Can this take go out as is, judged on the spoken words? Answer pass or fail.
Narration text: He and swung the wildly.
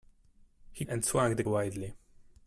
pass